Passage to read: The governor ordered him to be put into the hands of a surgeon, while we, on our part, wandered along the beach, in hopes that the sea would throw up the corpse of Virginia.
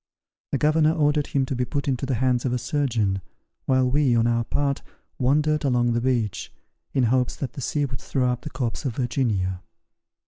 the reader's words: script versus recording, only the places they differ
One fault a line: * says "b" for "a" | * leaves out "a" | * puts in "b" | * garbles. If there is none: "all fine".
all fine